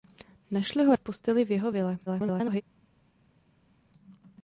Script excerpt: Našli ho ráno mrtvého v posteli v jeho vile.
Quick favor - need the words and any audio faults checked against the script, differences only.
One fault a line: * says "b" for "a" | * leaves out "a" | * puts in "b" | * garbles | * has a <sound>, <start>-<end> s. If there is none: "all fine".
* leaves out "ráno mrtvého"
* garbles